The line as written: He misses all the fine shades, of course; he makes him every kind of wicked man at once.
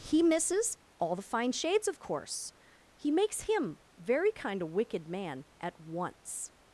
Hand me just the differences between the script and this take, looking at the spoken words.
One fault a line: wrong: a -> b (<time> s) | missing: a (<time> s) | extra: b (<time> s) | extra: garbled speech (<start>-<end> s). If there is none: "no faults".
wrong: every -> very (4.0 s)